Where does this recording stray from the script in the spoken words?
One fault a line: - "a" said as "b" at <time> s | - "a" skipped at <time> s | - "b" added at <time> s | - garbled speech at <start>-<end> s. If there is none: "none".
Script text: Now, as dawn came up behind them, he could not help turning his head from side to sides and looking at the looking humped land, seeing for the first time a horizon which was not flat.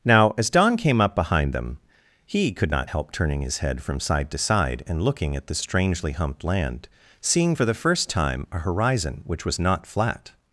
- "sides" said as "side" at 4.4 s
- "looking" said as "strangely" at 5.5 s